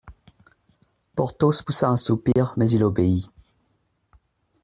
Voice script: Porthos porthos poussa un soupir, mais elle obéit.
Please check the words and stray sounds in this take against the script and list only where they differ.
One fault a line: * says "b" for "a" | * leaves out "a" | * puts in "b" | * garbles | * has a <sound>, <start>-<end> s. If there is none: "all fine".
* leaves out "porthos"
* has a dropout, 2.3-2.4 s
* says "il" for "elle"